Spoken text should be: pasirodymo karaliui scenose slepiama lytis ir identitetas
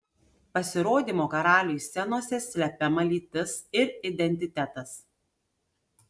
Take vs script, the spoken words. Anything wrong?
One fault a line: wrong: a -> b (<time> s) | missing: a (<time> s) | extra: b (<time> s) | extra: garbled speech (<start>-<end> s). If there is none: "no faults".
no faults